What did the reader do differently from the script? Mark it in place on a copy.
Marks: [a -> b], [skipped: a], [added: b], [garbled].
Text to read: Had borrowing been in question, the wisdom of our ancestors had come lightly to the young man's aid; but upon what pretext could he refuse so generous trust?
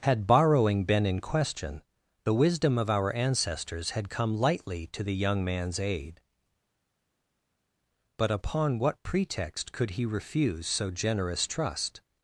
Had borrowing been in question, the wisdom of our ancestors had come lightly to the young man's aid; but upon what pretext could he refuse so generous trust?